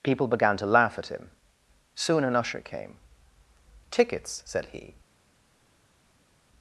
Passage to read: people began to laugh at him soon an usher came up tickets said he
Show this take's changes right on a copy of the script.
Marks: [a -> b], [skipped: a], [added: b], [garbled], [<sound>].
people began to laugh at him soon an usher came [skipped: up] tickets said he